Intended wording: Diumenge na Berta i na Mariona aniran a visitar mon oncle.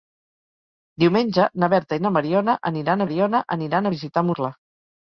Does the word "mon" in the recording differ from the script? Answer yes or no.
yes